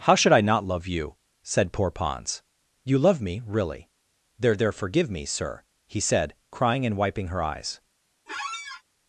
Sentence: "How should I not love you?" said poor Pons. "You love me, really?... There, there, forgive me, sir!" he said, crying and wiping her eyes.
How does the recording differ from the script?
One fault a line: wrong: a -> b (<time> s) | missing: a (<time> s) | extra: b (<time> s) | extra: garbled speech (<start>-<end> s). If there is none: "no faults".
no faults